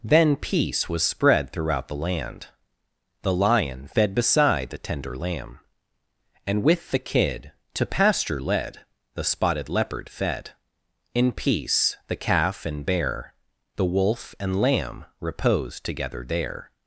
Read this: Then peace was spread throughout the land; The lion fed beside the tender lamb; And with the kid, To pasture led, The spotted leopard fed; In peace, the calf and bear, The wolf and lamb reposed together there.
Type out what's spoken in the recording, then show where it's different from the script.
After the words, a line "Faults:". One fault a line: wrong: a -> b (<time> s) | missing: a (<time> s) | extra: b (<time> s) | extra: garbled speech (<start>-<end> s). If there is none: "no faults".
Then peace was spread throughout the land; The lion fed beside the tender lamb; And with the kid, To pasture led, The spotted leopard fed; In peace, the calf and bear, The wolf and lamb reposed together there.
Faults:
no faults